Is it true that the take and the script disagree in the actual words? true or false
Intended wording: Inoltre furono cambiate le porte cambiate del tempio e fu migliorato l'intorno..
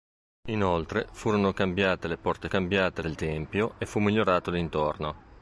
false